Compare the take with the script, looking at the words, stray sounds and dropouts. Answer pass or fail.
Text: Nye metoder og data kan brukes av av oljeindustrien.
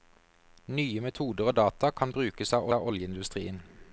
pass